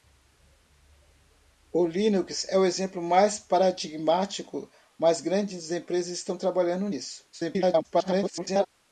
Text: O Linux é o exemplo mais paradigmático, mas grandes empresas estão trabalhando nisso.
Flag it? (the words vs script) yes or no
yes